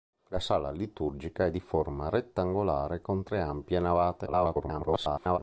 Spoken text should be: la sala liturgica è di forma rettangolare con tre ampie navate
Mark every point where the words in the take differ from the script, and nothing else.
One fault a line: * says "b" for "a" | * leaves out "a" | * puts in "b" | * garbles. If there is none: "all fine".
* garbles